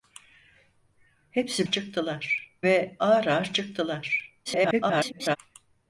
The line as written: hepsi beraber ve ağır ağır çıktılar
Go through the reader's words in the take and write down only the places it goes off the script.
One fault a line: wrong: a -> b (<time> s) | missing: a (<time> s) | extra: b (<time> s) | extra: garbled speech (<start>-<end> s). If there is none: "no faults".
wrong: beraber -> çıktılar (1.6 s)
extra: garbled speech (4.4-5.4 s)